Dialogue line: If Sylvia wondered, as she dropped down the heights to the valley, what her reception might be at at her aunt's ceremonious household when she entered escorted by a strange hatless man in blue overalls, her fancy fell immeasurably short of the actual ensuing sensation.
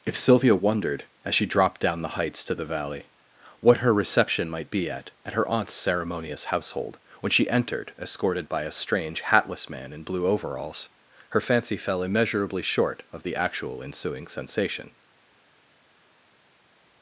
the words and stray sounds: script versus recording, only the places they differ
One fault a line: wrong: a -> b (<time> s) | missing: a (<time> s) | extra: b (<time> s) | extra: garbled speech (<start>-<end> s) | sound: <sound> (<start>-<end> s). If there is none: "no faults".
no faults